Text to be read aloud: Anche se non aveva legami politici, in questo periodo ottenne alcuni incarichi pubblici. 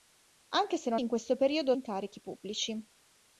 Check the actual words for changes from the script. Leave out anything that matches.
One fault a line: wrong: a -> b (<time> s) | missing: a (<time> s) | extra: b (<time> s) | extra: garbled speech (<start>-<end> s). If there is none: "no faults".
missing: aveva legami politici (1.0 s)
missing: ottenne alcuni (1.7 s)